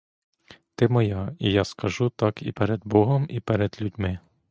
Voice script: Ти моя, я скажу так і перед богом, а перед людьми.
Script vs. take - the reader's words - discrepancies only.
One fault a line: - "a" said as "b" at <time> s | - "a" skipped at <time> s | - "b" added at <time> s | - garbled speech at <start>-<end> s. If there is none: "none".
- "і" added at 1.4 s
- "а" said as "і" at 3.3 s